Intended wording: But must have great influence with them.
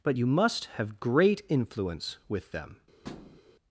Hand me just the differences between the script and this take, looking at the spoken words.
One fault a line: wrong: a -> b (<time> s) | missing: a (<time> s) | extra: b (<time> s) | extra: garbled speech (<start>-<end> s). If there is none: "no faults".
extra: you (0.1 s)